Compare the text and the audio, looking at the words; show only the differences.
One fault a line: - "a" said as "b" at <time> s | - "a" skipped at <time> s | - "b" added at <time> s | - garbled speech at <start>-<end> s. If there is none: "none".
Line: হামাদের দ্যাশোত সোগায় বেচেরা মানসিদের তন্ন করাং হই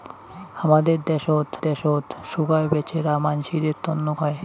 - "দ্যাশোত" added at 1.6 s
- "করাং" skipped at 4.1 s